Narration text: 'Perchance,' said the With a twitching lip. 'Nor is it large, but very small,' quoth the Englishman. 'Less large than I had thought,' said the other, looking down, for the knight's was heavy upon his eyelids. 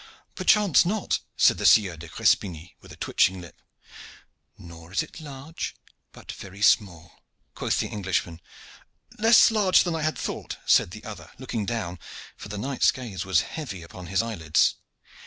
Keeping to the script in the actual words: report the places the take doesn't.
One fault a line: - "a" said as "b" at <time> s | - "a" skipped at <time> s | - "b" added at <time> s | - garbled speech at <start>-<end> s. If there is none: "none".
- "not" added at 0.8 s
- "Sieur de Crespigny" added at 1.7 s
- "gaze" added at 12.9 s